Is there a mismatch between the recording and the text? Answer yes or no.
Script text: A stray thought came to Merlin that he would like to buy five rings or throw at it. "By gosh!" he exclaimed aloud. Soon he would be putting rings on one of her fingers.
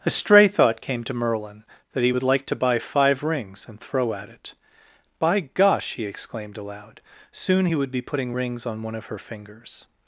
yes